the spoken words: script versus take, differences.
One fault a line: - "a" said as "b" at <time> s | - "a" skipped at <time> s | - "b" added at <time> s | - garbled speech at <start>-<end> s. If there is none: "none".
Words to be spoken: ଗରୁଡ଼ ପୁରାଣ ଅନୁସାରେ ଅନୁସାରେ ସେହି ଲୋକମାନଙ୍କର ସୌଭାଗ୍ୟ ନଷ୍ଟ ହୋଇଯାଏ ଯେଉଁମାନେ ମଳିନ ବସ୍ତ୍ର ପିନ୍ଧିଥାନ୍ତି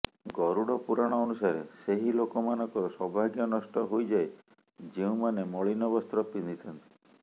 - "ଅନୁସାରେ" skipped at 1.6 s